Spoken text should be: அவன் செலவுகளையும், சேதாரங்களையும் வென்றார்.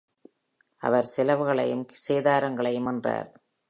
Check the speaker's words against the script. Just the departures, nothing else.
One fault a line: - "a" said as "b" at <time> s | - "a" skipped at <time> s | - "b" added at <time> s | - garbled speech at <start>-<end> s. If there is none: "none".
- "அவன்" said as "அவர்" at 0.8 s